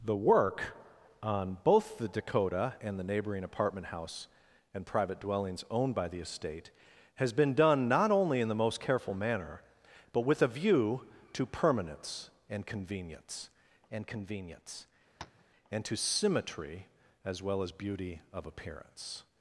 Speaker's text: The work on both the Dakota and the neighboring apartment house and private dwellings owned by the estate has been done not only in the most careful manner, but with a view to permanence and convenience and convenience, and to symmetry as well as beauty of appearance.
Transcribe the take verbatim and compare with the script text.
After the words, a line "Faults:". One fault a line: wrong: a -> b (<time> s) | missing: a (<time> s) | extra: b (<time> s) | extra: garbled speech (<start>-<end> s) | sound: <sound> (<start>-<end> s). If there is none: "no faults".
The work on both the Dakota and the neighboring apartment house and private dwellings owned by the estate has been done not only in the most careful manner, but with a view to permanence and convenience and convenience, and to symmetry as well as beauty of appearance.
Faults:
sound: tap (15.2-15.4 s)